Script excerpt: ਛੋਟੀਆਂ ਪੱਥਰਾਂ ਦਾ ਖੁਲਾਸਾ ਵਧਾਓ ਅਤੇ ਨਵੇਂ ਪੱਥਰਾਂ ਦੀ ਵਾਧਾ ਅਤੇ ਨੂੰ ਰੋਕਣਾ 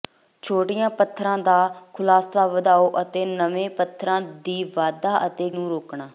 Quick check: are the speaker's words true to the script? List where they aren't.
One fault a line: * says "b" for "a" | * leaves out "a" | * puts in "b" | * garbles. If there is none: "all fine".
all fine